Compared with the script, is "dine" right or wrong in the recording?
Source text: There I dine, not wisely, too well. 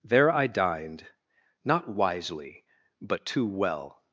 wrong